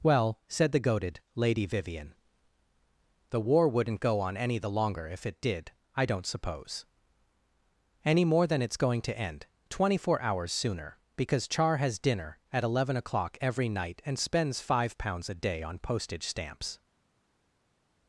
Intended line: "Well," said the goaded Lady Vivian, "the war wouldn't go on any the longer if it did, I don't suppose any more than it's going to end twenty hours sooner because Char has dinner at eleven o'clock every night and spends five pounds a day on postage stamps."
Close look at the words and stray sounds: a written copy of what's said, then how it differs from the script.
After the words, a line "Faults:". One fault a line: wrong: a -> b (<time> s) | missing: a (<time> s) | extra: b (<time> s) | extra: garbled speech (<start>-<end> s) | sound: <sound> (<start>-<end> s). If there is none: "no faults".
"Well," said the goaded Lady Vivian, "the war wouldn't go on any the longer if it did, I don't suppose any more than it's going to end twenty four hours sooner because Char has dinner at eleven o'clock every night and spends five pounds a day on postage stamps."
Faults:
extra: four (10.0 s)